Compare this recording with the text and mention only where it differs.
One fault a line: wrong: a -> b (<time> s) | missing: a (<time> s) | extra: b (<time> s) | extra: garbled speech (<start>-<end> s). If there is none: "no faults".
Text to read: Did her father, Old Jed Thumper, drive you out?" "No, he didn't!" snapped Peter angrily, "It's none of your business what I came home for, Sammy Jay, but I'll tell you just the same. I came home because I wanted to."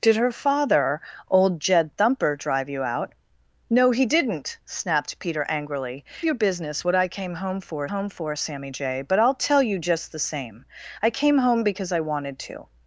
missing: It's none of (6.0 s)
extra: home for (7.9 s)